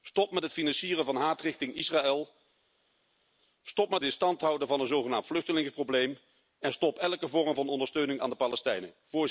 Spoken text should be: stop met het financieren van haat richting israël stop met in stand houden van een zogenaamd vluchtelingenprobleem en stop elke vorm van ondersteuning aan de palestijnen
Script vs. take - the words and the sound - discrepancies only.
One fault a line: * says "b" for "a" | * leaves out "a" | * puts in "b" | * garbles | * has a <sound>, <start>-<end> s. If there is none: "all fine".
all fine